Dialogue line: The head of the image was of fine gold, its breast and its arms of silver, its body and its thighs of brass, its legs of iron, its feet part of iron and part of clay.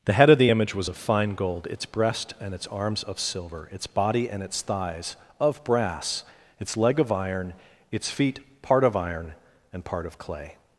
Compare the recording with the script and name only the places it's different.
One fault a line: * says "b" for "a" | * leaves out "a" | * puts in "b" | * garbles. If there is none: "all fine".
* says "leg" for "legs"